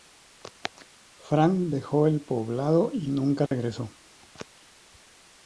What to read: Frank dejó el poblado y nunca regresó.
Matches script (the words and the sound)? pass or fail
fail